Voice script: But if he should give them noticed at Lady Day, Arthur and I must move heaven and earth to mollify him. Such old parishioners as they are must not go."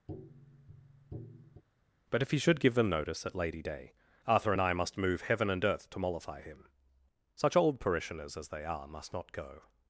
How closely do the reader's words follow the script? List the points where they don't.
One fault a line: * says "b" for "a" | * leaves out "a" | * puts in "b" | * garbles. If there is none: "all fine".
* says "notice" for "noticed"